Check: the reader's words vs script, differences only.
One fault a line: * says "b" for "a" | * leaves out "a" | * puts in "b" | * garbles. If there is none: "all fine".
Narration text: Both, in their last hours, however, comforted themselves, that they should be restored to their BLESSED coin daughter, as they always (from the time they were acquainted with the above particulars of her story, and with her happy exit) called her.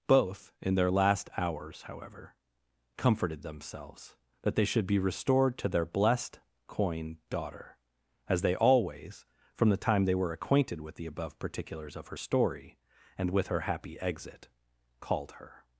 all fine